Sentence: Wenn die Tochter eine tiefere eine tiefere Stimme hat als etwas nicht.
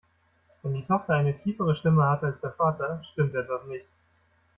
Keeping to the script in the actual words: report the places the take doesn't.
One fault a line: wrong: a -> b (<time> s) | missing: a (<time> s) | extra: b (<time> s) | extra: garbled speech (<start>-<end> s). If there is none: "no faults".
missing: eine tiefere (1.8 s)
extra: der Vater stimmt (2.4 s)